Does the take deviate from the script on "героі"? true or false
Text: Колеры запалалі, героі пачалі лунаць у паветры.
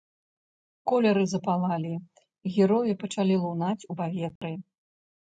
false